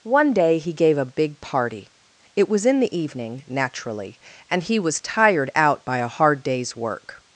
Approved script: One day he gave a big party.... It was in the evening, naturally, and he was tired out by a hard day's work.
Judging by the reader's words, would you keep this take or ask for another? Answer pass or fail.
pass